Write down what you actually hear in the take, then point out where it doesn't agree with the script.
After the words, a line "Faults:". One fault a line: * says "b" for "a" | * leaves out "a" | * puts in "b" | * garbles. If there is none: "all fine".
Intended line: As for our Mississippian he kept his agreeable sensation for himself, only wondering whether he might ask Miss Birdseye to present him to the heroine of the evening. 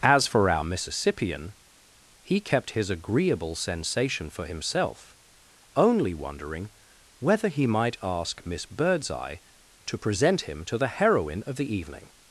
As for our Mississippian he kept his agreeable sensation for himself, only wondering whether he might ask Miss Birdseye to present him to the heroine of the evening.
Faults:
all fine